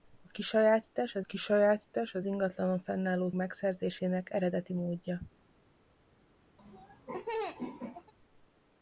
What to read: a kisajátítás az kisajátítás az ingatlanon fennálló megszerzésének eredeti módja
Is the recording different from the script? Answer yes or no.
no